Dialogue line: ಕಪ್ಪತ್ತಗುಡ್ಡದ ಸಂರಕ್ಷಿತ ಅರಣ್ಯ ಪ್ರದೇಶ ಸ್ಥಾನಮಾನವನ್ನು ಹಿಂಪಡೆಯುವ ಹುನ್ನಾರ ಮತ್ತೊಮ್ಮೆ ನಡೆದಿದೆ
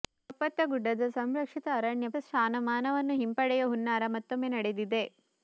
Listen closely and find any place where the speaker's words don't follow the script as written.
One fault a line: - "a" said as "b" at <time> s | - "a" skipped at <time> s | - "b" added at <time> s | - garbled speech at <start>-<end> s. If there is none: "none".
- "ಪ್ರದೇಶ" skipped at 2.1 s